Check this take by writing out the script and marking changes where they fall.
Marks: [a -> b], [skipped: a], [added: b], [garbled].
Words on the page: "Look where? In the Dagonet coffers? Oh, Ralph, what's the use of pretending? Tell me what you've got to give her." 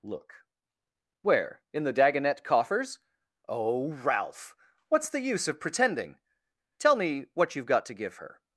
"Look where? In the Dagonet coffers? Oh, Ralph, what's the use of pretending? Tell me what you've got to give her."